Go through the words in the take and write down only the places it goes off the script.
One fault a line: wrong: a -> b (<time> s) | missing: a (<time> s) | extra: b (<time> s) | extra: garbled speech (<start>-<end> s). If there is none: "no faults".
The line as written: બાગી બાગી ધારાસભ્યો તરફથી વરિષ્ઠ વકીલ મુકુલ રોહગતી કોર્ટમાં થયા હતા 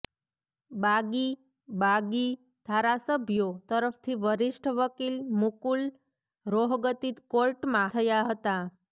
no faults